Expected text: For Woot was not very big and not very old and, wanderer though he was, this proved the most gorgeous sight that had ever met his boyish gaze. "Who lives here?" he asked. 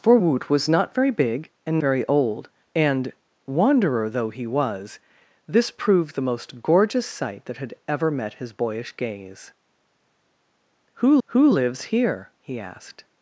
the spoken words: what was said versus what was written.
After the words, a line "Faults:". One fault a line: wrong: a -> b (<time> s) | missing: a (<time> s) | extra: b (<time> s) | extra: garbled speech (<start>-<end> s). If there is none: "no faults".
For Woot was not very big and very old and, wanderer though he was, this proved the most gorgeous sight that had ever met his boyish gaze. "Who who lives here?" he asked.
Faults:
missing: not (1.8 s)
extra: who (11.3 s)